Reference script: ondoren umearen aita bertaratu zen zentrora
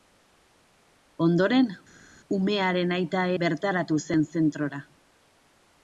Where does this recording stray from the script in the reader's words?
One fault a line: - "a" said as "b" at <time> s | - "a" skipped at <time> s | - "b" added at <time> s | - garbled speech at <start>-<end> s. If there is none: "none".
none